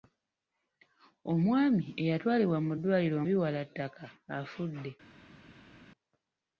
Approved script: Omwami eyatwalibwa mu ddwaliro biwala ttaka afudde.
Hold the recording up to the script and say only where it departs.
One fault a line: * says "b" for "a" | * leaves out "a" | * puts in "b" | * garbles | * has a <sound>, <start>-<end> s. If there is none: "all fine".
all fine